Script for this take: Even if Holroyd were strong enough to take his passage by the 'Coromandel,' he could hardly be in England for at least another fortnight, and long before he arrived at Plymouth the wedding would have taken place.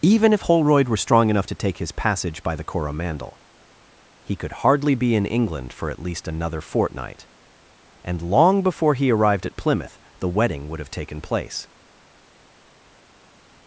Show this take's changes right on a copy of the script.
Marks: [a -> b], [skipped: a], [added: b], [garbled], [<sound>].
Even if Holroyd were strong enough to take his passage by the 'Coromandel,' he could hardly be in England for at least another fortnight, and long before he arrived at Plymouth the wedding would have taken place.